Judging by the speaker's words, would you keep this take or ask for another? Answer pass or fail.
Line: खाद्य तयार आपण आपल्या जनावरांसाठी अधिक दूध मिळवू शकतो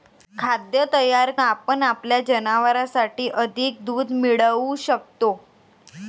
pass